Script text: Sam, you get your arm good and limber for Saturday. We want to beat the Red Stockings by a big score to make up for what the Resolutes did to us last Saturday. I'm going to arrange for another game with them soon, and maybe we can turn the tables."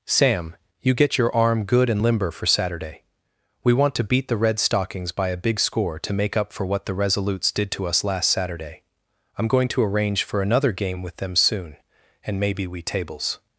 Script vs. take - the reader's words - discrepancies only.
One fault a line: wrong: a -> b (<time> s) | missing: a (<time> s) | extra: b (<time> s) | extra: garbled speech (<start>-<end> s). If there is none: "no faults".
missing: can turn the (12.8 s)